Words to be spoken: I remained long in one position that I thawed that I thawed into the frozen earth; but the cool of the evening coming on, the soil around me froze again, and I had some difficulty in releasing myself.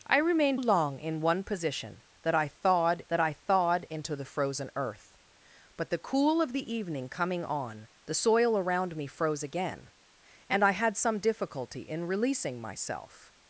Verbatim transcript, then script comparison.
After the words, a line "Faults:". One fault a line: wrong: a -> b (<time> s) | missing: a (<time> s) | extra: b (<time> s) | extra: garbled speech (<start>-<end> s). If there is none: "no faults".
I remained long in one position that I thawed that I thawed into the frozen earth; but the cool of the evening coming on, the soil around me froze again, and I had some difficulty in releasing myself.
Faults:
no faults